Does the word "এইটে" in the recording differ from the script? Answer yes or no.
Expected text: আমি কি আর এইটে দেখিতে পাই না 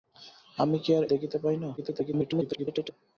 yes